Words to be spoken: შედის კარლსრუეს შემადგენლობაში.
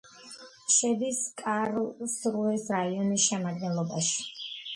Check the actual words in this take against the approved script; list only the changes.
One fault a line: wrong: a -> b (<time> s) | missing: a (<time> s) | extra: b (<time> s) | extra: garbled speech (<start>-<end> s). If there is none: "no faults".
extra: რაიონის (2.8 s)